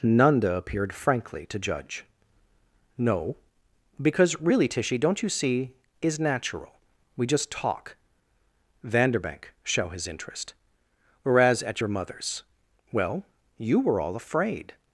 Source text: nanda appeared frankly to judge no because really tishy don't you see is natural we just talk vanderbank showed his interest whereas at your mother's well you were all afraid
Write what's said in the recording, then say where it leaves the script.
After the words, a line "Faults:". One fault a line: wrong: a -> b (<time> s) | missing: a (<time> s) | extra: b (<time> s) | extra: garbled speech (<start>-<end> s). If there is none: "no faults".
nanda appeared frankly to judge no because really tishy don't you see is natural we just talk vanderbank show his interest whereas at your mother's well you were all afraid
Faults:
wrong: showed -> show (9.6 s)